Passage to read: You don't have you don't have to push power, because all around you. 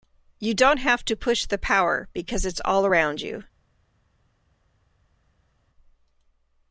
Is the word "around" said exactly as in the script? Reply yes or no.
yes